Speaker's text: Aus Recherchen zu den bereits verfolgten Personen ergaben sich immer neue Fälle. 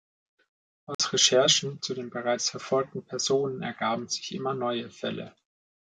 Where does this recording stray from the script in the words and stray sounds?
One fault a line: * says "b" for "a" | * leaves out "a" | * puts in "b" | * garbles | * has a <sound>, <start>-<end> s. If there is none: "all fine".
* has a dropout, 0.9-1.0 s